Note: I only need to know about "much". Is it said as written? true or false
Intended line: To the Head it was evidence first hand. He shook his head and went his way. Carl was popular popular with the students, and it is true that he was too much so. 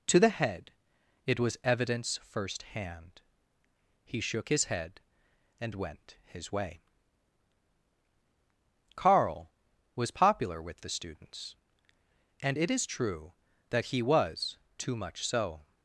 true